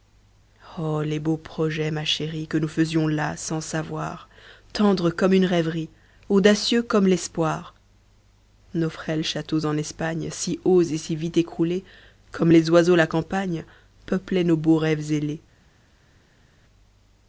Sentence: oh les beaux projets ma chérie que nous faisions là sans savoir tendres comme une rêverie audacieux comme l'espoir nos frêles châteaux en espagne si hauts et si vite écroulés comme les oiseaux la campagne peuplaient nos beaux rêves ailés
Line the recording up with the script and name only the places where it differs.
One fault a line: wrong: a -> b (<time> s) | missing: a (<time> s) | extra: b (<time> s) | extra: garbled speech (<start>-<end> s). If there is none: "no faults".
no faults